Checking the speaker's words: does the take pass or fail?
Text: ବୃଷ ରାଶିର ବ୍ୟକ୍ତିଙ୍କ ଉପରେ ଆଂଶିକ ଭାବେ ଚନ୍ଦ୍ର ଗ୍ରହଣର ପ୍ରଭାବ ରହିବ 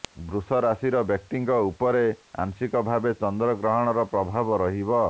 pass